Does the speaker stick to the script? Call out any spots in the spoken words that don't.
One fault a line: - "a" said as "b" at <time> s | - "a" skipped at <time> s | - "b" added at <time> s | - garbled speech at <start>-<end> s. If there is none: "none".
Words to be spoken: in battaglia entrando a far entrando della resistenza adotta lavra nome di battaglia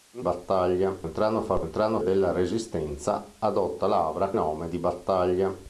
none